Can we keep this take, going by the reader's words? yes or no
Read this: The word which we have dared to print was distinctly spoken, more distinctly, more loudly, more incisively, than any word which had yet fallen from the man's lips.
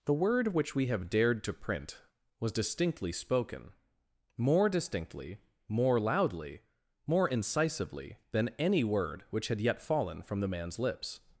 yes